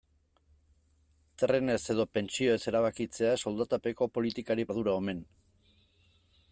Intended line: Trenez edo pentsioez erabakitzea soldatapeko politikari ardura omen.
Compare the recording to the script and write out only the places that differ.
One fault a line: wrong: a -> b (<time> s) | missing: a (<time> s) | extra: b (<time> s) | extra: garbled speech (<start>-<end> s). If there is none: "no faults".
no faults